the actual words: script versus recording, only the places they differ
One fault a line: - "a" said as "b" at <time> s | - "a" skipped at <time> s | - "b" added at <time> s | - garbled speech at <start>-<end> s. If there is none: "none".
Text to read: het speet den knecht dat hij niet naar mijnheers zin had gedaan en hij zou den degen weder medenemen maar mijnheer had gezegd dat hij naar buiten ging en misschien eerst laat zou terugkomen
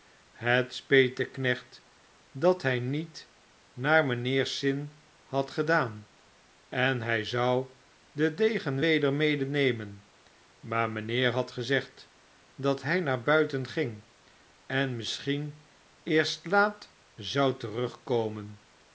none